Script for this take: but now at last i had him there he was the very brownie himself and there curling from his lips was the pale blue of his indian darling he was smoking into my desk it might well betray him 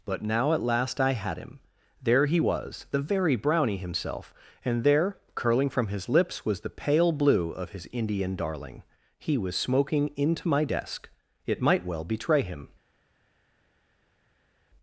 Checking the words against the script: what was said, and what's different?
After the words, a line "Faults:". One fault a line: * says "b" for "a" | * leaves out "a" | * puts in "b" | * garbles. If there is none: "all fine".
but now at last i had him there he was the very brownie himself and there curling from his lips was the pale blue of his indian darling he was smoking into my desk it might well betray him
Faults:
all fine